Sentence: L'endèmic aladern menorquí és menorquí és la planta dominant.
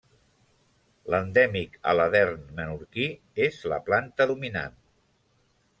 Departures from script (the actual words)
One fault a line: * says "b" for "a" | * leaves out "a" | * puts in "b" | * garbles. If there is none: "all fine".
* leaves out "menorquí és"